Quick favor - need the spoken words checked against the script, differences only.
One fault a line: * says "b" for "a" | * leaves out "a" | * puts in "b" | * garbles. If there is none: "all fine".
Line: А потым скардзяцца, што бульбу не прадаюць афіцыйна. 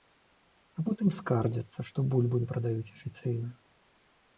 all fine